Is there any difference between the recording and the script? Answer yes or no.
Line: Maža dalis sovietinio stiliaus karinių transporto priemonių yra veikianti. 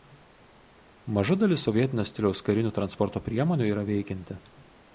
no